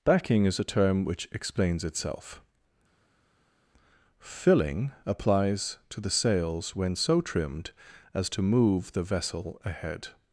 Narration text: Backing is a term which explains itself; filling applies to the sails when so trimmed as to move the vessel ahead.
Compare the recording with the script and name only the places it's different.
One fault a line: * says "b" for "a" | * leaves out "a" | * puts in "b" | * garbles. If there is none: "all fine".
all fine